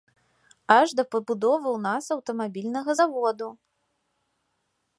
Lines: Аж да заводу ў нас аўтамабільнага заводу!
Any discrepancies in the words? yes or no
yes